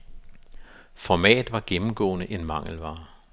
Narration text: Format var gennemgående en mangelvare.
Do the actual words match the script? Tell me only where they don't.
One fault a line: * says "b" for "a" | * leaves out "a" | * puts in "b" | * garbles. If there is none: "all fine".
all fine